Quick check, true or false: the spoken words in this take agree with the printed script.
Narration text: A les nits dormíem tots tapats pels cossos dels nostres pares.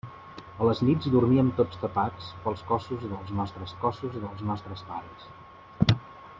false